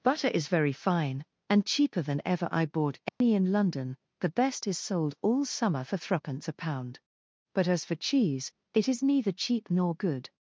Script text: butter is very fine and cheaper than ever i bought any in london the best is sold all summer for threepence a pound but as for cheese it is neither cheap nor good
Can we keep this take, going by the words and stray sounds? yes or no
no